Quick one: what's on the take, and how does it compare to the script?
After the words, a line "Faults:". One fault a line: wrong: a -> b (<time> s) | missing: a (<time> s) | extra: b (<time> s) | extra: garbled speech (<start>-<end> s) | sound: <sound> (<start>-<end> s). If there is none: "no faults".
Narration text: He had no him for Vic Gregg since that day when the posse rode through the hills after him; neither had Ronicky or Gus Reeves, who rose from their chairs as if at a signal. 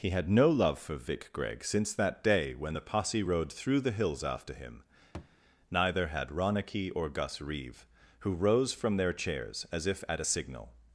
He had no love for Vic Gregg since that day when the posse rode through the hills after him; neither had Ronicky or Gus Reeve, who rose from their chairs as if at a signal.
Faults:
wrong: him -> love (0.5 s)
sound: thud (5.1-5.4 s)
wrong: Reeves -> Reeve (7.4 s)